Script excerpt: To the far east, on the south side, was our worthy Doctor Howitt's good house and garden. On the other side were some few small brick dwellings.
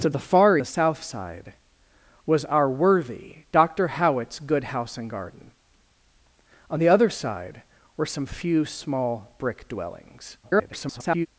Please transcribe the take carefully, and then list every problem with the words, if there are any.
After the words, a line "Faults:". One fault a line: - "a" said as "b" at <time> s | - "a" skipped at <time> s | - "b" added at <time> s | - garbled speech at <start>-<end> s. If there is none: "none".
To the far the south side, was our worthy Doctor Howitt's good house and garden. On the other side were some few small brick dwellings. [garbled]
Faults:
- "east on" skipped at 0.6 s
- garbled speech at 10.4-11.3 s